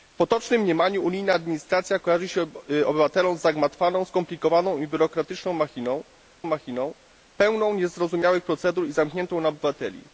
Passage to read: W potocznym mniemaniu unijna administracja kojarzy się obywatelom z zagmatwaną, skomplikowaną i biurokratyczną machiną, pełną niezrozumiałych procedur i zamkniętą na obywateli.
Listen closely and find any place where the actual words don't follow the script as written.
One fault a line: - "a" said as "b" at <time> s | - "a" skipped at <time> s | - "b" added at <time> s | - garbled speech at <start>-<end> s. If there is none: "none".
- "machiną" added at 6.4 s